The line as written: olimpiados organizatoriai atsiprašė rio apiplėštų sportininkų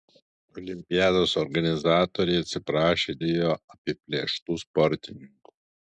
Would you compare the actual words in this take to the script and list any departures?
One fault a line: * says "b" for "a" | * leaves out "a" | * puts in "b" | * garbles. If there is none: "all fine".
all fine